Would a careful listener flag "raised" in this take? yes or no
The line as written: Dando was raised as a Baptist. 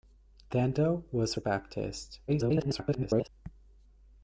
yes